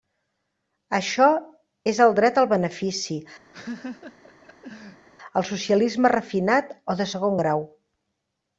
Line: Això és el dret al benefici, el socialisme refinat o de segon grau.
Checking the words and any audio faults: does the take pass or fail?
fail